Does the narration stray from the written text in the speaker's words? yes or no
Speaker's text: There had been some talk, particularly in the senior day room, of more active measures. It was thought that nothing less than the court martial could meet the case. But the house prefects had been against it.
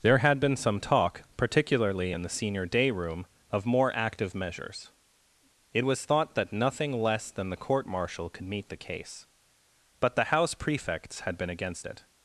no